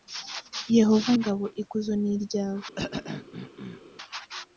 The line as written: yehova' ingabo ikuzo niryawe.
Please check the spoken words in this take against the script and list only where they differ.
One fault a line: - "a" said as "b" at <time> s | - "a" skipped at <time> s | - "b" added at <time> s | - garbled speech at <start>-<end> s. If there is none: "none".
none